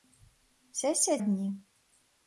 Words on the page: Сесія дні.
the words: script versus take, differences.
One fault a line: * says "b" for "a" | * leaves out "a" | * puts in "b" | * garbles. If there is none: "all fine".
all fine